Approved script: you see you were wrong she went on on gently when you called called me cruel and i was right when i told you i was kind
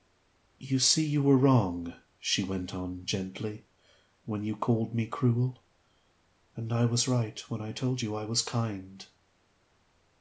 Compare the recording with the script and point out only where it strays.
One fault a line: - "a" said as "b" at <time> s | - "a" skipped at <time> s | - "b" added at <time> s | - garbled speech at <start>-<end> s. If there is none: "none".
- "on" skipped at 3.0 s
- "called" skipped at 5.0 s